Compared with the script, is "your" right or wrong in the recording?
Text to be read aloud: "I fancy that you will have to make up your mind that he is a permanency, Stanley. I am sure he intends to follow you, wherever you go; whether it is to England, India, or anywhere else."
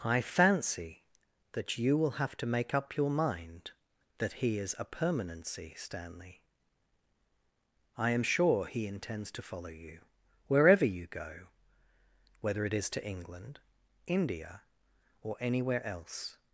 right